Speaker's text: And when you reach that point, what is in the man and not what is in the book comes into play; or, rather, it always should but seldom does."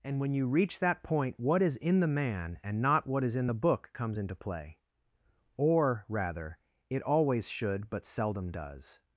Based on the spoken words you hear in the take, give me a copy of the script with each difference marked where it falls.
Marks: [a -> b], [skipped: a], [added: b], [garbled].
And when you reach that point, what is in the man and not what is in the book comes into play; or, rather, it always should but seldom does."